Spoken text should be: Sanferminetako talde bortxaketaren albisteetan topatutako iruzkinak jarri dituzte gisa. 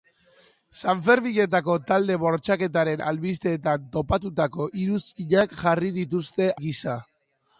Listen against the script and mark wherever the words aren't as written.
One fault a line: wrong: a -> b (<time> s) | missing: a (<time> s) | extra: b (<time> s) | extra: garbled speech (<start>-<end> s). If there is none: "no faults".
no faults